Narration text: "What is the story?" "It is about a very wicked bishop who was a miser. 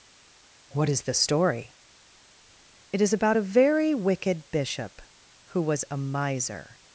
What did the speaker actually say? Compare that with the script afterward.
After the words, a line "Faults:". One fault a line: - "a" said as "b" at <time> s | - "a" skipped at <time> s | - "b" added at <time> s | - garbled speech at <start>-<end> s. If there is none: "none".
"What is the story?" "It is about a very wicked bishop who was a miser.
Faults:
none